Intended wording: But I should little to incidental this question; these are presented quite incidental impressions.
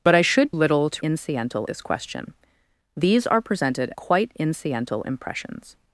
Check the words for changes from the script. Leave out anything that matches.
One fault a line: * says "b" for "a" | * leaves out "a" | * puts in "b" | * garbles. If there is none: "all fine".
all fine